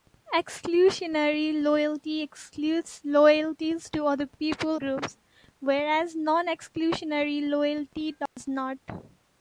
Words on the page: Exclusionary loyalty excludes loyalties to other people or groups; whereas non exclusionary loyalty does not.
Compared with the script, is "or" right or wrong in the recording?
wrong